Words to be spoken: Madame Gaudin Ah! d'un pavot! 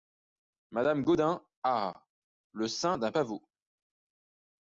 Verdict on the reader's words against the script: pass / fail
fail